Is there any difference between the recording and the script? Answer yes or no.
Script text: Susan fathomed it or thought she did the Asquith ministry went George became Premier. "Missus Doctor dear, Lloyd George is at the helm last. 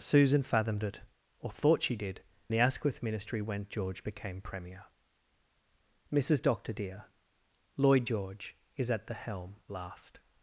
no